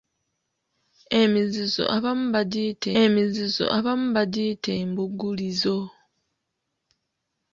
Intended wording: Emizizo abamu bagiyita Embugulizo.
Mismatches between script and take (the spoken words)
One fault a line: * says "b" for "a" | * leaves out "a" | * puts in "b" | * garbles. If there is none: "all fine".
* puts in "emizizo abamu bagiyita"